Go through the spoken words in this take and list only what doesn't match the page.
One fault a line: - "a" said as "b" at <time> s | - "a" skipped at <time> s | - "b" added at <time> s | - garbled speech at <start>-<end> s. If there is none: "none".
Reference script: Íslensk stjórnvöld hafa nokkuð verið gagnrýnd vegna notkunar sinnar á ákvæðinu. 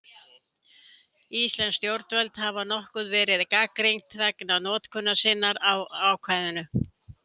none